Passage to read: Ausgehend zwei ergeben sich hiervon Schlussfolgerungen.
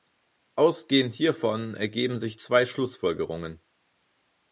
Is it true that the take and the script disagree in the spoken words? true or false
true